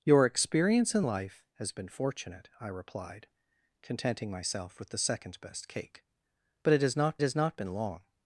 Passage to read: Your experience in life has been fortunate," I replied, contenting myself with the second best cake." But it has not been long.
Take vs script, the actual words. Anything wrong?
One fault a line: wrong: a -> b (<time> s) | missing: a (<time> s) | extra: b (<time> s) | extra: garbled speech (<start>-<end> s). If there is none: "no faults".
extra: has not (7.2 s)